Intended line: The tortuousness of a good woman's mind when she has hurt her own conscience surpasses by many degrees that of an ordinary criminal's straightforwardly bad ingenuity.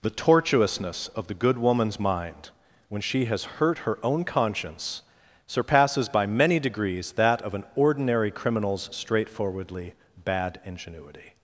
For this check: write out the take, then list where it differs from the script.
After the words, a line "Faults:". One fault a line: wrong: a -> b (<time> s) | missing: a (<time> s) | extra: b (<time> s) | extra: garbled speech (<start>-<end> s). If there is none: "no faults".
The tortuousness of the good woman's mind when she has hurt her own conscience surpasses by many degrees that of an ordinary criminal's straightforwardly bad ingenuity.
Faults:
wrong: a -> the (1.3 s)